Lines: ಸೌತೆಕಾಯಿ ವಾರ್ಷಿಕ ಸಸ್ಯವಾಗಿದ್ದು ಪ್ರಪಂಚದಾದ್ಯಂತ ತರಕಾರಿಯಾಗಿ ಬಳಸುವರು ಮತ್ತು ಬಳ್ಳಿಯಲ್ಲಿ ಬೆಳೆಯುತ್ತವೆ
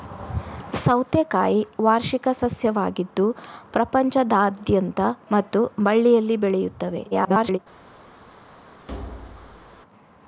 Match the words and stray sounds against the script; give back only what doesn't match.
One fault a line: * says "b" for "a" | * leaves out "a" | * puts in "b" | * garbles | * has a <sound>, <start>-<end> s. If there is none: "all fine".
* leaves out "ತರಕಾರಿಯಾಗಿ ಬಳಸುವರು"
* garbles
* has a thud, 8.9-9.8 s